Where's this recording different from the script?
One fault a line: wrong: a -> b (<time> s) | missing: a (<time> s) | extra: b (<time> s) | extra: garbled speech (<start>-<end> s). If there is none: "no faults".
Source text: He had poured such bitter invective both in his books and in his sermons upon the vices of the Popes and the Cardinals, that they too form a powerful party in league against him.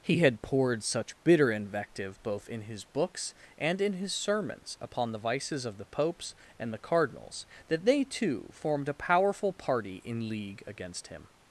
wrong: form -> formed (8.5 s)